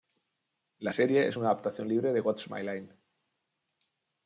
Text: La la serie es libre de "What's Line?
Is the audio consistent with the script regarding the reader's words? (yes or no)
no